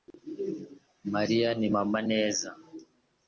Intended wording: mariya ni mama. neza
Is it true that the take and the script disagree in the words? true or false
false